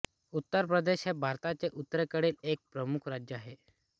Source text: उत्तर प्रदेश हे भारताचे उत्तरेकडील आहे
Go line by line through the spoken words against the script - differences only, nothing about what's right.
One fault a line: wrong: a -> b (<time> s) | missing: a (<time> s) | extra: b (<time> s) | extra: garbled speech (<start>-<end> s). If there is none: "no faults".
extra: एक प्रमुख राज्य (2.4 s)